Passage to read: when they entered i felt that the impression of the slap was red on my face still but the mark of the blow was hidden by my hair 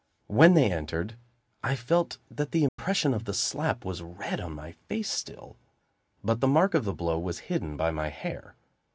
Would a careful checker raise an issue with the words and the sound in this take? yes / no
yes